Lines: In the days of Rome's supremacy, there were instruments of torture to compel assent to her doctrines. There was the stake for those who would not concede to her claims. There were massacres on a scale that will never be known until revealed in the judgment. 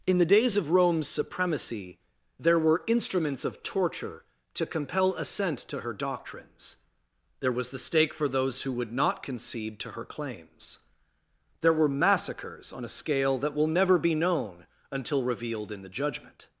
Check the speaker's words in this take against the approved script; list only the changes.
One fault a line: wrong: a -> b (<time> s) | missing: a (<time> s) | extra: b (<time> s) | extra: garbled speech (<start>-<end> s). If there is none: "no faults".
no faults